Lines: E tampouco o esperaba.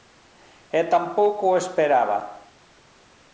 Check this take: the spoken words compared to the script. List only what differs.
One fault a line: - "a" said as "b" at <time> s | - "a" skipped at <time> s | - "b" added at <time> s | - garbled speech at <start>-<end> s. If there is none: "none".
none